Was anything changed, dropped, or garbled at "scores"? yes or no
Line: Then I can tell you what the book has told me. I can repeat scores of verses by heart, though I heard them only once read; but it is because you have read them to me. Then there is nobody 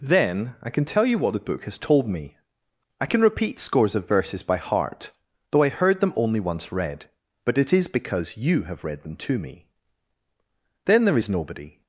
no